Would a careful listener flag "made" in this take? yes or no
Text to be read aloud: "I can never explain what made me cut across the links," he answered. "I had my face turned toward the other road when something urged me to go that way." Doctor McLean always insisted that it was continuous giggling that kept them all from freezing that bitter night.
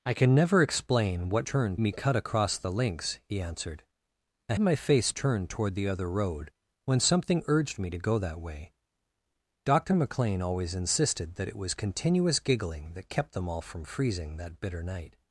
yes